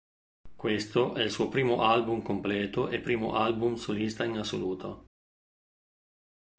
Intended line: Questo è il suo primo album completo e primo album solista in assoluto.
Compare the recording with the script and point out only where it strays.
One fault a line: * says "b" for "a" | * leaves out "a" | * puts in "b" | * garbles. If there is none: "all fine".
all fine